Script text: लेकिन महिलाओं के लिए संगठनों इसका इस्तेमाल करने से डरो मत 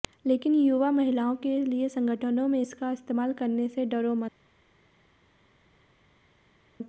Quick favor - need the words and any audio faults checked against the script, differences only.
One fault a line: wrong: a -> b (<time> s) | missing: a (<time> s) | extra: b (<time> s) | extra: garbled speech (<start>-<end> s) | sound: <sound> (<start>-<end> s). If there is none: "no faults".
extra: युवा (0.6 s)
extra: में (2.5 s)